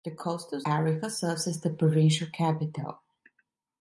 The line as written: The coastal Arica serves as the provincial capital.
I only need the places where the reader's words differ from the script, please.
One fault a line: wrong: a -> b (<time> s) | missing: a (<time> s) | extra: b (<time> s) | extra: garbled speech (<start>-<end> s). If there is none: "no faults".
no faults